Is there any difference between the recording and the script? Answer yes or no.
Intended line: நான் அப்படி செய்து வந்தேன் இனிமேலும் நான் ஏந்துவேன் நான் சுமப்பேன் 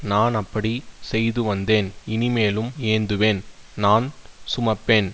yes